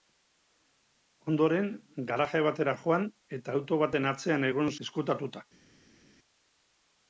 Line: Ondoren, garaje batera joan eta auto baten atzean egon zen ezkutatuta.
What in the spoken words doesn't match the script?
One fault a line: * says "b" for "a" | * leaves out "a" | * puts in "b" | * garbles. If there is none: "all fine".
* leaves out "zen"